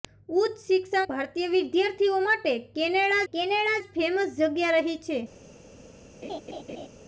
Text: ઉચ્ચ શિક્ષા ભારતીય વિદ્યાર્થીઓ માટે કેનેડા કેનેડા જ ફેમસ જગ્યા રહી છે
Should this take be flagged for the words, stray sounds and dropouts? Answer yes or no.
yes